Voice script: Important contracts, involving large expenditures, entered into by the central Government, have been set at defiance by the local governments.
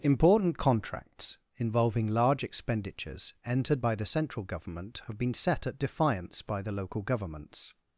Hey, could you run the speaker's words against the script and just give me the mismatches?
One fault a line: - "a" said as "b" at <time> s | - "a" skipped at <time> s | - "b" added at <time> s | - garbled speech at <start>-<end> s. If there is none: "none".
- "into" skipped at 3.8 s